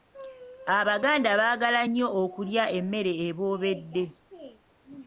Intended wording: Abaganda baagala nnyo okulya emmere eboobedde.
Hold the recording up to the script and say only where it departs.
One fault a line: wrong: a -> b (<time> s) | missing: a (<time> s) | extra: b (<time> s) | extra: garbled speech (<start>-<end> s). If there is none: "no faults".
no faults